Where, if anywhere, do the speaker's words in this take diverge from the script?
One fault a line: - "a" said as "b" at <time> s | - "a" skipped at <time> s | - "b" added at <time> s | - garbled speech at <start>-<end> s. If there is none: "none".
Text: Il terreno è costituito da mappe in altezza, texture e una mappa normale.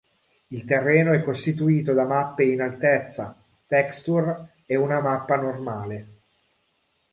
none